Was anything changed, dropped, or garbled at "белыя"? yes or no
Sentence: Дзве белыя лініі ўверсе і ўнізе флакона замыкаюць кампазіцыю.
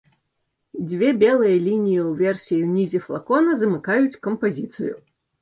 no